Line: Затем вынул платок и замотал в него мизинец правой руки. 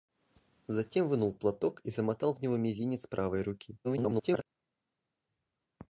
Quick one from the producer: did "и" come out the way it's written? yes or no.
yes